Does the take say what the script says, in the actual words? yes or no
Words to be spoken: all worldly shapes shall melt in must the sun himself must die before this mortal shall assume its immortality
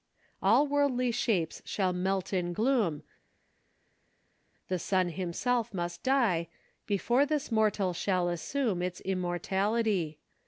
no